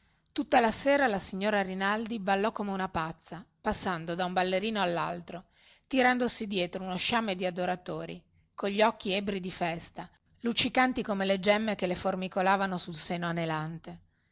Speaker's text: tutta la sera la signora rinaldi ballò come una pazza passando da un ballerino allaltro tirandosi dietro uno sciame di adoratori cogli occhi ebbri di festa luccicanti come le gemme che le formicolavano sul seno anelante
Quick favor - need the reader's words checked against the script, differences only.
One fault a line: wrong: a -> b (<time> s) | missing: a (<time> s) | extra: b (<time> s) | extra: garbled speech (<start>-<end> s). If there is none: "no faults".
no faults